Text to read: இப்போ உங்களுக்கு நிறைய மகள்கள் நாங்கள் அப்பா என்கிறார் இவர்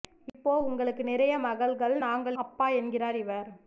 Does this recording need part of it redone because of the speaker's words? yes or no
no